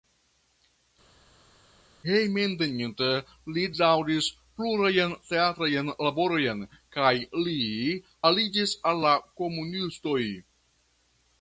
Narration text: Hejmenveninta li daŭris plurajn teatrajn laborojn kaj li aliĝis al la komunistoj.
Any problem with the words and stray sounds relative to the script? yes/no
no